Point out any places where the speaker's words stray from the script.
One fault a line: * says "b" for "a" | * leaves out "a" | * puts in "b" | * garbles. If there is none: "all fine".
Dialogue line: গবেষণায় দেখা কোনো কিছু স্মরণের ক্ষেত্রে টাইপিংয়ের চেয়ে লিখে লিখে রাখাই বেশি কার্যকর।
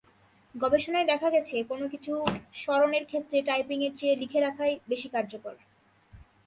* puts in "গেছে"
* leaves out "লিখে"